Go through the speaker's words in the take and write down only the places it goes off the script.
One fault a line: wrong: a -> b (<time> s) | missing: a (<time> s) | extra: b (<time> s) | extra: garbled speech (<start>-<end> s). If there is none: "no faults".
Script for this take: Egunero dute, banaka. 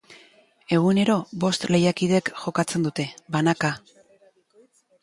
extra: bost lehiakidek jokatzen (1.4 s)